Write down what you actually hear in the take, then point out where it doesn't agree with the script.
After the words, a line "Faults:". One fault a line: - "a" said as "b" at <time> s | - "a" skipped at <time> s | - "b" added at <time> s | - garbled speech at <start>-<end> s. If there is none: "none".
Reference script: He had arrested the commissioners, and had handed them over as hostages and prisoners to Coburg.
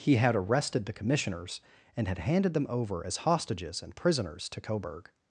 He had arrested the commissioners, and had handed them over as hostages and prisoners to Coburg.
Faults:
none